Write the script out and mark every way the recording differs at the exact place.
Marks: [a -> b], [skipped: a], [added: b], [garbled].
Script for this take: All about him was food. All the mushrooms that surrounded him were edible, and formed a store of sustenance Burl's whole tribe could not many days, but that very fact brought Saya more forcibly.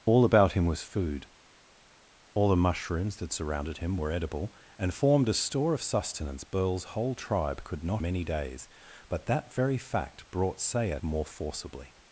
All about him was food. All the mushrooms that surrounded him were edible, and formed a store of sustenance Burl's whole tribe could not many days, but that very fact brought Saya more forcibly.